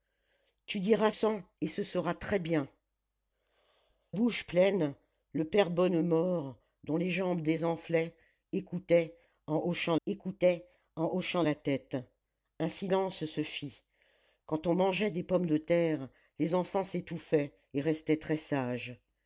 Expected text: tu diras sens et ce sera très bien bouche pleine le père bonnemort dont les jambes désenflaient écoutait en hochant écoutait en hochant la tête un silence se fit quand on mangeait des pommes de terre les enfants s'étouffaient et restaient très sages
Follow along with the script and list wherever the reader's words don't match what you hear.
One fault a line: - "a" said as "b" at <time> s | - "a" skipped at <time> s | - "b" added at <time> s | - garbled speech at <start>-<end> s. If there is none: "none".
none